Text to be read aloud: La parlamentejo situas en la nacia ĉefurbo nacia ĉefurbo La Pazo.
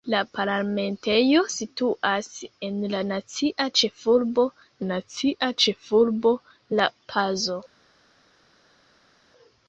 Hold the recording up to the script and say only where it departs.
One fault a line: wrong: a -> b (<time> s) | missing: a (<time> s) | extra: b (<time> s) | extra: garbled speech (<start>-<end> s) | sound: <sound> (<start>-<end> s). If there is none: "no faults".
no faults